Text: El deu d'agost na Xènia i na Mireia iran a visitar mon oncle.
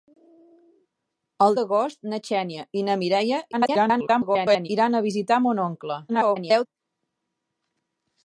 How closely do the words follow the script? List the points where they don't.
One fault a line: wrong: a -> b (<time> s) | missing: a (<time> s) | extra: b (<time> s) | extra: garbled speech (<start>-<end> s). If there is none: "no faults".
missing: deu (1.6 s)
extra: garbled speech (3.5-4.7 s)
extra: garbled speech (6.1-6.7 s)